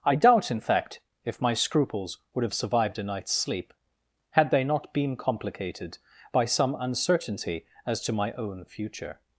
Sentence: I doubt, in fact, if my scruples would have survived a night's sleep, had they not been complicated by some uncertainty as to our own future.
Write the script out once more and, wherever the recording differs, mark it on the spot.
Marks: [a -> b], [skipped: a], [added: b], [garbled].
I doubt, in fact, if my scruples would have survived a night's sleep, had they not been complicated by some uncertainty as to [our -> my] own future.